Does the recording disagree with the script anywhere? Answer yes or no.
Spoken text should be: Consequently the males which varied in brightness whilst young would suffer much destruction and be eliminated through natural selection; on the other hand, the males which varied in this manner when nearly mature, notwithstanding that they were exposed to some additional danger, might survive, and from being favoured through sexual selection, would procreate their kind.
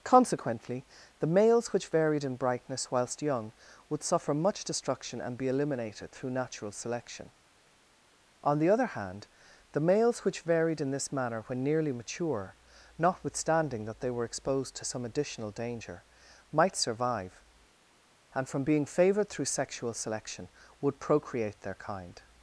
no